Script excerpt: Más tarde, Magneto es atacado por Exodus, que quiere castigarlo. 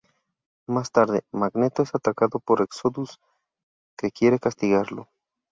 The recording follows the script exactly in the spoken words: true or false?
true